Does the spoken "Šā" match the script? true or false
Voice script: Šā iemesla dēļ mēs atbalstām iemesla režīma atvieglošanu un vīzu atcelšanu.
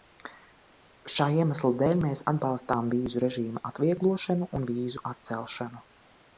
true